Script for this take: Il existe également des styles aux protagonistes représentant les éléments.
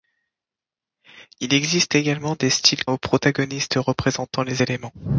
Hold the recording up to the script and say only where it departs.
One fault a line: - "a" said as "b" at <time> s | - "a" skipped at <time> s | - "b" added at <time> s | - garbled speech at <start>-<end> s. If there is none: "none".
none